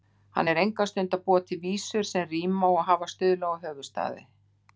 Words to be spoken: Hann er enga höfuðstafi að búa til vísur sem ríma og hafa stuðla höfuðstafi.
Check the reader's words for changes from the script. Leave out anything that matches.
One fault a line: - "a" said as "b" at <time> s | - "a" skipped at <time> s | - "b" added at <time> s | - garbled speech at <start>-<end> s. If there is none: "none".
- "höfuðstafi" said as "stund" at 0.9 s
- "og" added at 3.5 s